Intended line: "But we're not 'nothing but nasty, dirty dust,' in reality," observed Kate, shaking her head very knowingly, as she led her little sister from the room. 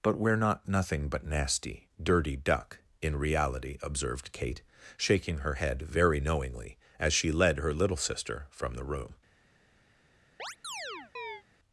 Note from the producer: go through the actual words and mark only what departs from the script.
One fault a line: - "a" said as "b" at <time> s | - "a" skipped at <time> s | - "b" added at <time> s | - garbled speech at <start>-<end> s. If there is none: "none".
- "dust" said as "duck" at 2.4 s